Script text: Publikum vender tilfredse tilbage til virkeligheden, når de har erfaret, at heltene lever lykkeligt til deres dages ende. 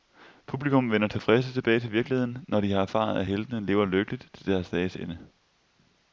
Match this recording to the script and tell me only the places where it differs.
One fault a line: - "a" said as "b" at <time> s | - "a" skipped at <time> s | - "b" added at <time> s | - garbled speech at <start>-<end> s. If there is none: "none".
none